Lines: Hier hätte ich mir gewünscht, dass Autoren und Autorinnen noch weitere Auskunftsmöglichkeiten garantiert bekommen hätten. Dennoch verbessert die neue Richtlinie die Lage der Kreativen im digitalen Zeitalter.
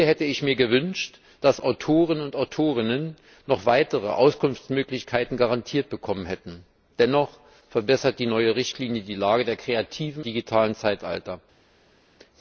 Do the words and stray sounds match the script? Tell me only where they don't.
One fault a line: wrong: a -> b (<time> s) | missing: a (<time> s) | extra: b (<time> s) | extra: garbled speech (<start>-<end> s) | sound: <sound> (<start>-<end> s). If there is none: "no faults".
missing: im (10.3 s)